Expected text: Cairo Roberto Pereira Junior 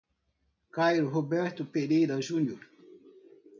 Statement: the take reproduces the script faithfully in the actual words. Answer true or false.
true